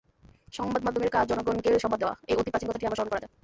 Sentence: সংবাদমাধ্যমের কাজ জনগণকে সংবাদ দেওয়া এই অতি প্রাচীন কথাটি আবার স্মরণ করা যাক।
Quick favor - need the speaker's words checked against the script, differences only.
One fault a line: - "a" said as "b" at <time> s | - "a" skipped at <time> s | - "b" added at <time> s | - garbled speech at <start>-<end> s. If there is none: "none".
none